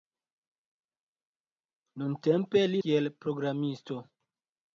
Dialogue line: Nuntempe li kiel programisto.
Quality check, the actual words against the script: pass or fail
pass